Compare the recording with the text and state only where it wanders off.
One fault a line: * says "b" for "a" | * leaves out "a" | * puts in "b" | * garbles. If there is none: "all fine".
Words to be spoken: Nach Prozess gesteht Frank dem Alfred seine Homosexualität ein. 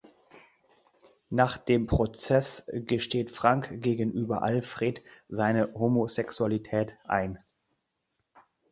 * puts in "dem"
* says "gegenüber" for "dem"